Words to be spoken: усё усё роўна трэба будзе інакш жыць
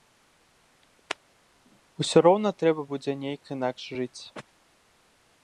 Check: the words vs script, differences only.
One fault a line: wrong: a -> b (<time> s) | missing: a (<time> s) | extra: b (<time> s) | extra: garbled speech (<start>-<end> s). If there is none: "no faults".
missing: усё (2.2 s)
extra: нейк (3.2 s)